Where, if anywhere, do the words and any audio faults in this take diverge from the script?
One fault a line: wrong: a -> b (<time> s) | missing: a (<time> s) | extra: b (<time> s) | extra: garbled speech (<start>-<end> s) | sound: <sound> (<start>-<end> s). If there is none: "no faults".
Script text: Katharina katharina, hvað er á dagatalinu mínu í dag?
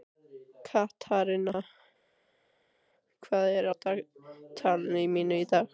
missing: katharina (1.6 s)